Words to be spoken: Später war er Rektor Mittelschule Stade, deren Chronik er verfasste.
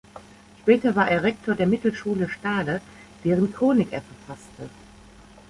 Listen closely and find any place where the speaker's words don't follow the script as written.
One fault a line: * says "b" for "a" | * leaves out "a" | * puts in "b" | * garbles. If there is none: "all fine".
* puts in "der"